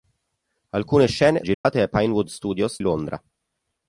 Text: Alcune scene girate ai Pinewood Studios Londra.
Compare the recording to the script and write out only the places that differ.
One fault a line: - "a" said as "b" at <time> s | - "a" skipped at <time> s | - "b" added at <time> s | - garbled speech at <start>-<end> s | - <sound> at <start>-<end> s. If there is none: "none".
- dropout at 1.5-1.6 s